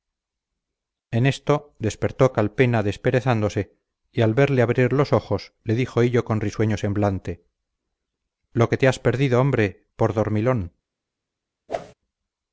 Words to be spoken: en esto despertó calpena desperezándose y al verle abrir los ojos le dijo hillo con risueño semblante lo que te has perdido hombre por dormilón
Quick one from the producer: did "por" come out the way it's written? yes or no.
yes